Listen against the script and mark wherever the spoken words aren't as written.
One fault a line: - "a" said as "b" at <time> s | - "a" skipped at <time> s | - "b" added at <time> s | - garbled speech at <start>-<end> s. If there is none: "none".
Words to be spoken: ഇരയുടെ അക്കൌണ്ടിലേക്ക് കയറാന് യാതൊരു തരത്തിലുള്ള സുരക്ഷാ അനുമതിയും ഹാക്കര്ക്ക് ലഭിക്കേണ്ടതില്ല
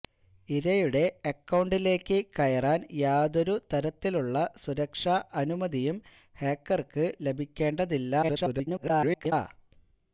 - garbled speech at 8.2-9.3 s